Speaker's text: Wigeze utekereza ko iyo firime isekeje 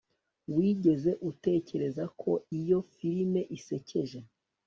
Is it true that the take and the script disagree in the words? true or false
false